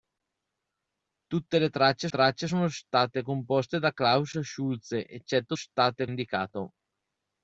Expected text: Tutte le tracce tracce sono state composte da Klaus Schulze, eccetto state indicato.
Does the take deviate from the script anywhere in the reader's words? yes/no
no